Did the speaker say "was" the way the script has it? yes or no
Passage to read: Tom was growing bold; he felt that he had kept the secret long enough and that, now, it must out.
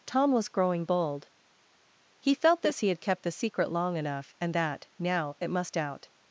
yes